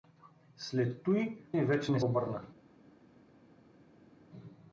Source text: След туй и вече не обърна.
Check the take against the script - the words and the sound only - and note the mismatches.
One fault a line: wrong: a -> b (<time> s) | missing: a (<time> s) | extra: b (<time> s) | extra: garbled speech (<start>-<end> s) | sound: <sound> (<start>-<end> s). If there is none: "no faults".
no faults